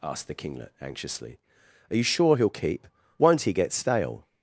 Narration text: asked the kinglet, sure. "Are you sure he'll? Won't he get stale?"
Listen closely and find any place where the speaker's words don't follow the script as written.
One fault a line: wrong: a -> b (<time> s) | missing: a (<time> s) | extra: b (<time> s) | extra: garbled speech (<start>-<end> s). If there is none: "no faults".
wrong: sure -> anxiously (0.8 s)
extra: keep (2.5 s)